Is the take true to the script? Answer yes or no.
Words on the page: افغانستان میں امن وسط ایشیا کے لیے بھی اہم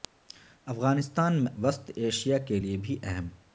no